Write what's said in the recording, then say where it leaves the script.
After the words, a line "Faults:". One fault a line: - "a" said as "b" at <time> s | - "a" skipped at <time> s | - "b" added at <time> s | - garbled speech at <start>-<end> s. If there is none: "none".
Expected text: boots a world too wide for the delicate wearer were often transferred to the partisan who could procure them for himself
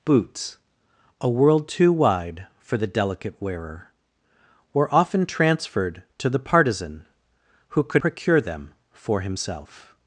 boots a world too wide for the delicate wearer were often transferred to the partisan who could procure them for himself
Faults:
none